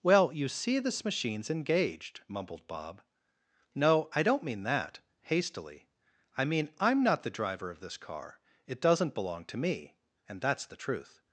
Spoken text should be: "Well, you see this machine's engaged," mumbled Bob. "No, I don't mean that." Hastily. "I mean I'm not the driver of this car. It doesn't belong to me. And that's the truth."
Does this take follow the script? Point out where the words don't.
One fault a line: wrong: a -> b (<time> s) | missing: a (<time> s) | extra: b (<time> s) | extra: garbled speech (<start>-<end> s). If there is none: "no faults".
no faults